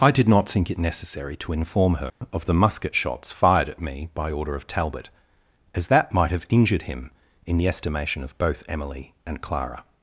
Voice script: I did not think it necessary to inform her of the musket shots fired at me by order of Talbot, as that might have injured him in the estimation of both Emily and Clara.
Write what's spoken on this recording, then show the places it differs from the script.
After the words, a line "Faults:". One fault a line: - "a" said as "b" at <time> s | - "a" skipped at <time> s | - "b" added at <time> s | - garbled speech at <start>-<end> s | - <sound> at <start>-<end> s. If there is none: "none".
I did not think it necessary to inform her of the musket shots fired at me by order of Talbot, as that might have injured him in the estimation of both Emily and Clara.
Faults:
- dropout at 2.1-2.2 s